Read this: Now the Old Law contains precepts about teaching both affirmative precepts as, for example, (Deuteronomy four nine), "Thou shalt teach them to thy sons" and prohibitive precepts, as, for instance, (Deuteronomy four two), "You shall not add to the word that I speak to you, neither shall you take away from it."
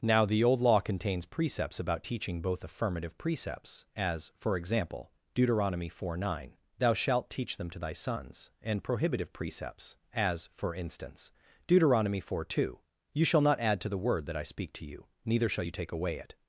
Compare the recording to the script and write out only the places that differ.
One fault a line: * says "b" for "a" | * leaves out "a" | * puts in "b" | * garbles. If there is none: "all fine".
* leaves out "from"